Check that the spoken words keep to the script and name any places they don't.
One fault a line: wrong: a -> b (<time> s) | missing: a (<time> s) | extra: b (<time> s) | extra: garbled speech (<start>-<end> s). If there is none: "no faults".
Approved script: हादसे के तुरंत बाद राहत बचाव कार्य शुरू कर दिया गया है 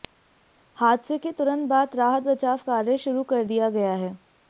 no faults